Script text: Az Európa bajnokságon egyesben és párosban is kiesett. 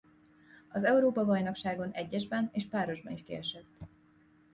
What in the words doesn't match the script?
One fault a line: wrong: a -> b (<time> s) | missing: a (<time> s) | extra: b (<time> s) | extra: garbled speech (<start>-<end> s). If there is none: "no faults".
no faults